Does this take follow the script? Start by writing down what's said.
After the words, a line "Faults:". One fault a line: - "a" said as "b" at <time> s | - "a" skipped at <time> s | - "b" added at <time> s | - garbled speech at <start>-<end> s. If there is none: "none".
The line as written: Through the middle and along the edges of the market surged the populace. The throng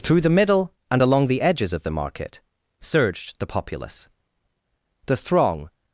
Through the middle and along the edges of the market surged the populace. The throng
Faults:
none